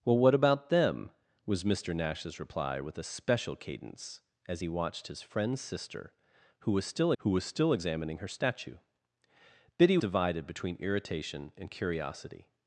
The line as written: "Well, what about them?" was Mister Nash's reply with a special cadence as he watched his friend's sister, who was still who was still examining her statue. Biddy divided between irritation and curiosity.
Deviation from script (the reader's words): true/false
false